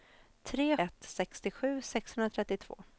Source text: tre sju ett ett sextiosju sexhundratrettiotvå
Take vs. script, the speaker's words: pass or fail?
fail